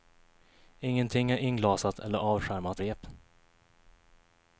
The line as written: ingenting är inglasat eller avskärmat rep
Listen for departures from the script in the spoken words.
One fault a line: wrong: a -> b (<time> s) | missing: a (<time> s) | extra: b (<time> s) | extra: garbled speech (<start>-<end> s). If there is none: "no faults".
no faults